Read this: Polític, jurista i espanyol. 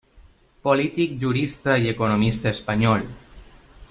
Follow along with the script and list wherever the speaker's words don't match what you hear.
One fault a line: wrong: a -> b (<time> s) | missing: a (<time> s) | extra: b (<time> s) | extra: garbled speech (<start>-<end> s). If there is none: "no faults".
extra: economista (1.9 s)